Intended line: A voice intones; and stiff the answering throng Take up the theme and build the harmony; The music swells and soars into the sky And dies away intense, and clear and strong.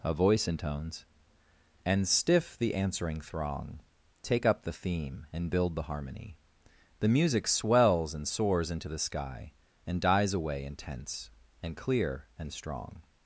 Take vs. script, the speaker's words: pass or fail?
pass